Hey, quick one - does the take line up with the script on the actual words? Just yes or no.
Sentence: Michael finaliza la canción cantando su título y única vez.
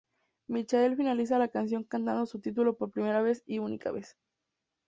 no